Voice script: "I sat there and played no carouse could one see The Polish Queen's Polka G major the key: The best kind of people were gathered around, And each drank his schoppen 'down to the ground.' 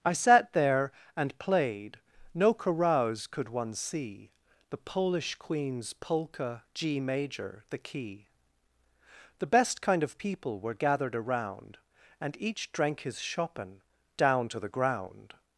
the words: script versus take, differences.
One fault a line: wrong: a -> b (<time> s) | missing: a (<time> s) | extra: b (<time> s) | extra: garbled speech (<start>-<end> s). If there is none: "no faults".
no faults